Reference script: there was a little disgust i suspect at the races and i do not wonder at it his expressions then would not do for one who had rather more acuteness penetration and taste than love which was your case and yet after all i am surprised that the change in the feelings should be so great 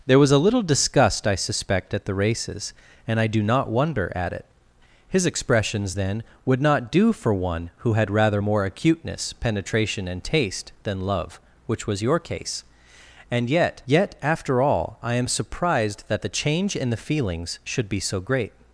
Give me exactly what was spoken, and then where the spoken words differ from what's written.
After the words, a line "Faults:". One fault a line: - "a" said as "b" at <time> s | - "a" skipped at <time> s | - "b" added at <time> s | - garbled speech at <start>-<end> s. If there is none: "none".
there was a little disgust i suspect at the races and i do not wonder at it his expressions then would not do for one who had rather more acuteness penetration and taste than love which was your case and yet yet after all i am surprised that the change in the feelings should be so great
Faults:
- "yet" added at 13.9 s